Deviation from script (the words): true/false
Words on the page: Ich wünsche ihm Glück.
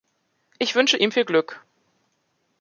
true